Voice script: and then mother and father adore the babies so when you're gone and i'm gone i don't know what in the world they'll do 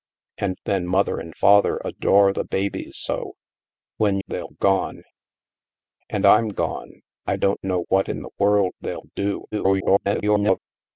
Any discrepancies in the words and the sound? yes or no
yes